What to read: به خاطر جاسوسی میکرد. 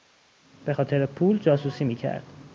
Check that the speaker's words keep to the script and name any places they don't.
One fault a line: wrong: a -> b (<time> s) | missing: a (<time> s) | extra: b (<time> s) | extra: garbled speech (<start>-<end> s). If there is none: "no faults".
extra: پول (1.1 s)